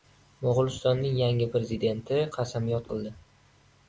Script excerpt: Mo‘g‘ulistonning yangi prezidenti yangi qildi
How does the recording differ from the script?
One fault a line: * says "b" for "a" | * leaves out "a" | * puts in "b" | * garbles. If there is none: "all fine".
* says "qasamyod" for "yangi"